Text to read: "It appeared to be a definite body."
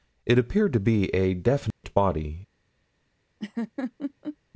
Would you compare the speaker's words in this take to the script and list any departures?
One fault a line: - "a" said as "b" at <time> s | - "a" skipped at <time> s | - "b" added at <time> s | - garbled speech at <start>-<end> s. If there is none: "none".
none